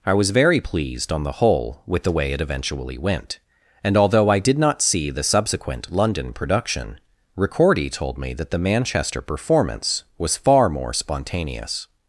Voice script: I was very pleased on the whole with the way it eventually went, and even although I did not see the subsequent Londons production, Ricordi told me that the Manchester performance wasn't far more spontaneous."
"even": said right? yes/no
no